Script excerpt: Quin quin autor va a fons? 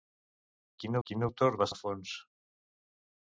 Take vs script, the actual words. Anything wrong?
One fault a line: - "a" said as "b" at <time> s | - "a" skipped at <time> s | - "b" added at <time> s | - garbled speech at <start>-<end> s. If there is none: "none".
none